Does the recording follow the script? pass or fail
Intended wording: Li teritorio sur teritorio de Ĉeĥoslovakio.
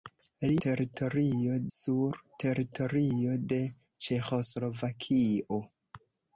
pass